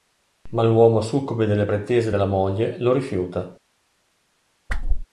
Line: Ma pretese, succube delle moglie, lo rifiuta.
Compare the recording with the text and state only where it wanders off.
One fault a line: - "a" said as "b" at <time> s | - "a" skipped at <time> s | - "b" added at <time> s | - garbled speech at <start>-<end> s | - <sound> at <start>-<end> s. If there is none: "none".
- "pretese" said as "l'uomo" at 0.6 s
- "pretese della" added at 1.7 s
- whoosh at 4.7-5.1 s